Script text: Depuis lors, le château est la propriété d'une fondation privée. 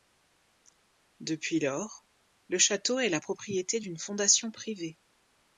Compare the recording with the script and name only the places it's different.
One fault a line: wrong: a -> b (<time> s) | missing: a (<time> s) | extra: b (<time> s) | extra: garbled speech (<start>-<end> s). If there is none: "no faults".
no faults